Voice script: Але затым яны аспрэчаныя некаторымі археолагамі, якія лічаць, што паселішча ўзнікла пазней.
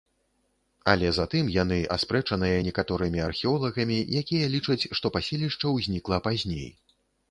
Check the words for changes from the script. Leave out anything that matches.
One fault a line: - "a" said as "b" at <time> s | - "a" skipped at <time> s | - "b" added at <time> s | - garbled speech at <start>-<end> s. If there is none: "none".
none